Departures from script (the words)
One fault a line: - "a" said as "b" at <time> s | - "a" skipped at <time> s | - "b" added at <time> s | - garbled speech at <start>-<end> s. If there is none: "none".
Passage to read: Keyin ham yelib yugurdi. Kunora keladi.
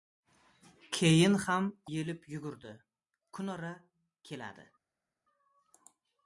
none